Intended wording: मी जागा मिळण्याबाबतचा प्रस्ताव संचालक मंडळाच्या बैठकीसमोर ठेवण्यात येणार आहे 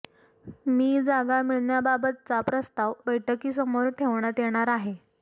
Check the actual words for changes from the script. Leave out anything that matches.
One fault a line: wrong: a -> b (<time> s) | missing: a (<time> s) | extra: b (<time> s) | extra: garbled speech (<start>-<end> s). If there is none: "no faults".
missing: संचालक मंडळाच्या (2.9 s)